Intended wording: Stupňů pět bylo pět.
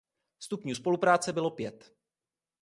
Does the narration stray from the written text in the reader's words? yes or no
yes